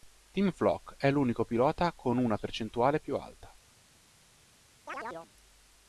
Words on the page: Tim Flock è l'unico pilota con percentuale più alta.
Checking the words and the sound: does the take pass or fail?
fail